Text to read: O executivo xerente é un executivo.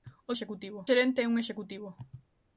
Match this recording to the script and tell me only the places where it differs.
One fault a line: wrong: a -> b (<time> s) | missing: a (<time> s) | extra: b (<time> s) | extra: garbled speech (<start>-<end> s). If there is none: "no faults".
no faults